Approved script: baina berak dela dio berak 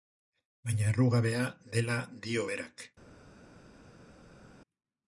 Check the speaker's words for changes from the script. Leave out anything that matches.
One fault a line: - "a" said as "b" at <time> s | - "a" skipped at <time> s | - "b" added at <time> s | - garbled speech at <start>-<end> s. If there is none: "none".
- "berak" said as "errugabea" at 0.9 s